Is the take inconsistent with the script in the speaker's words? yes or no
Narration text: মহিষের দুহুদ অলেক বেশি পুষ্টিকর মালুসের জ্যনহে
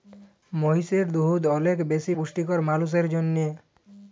no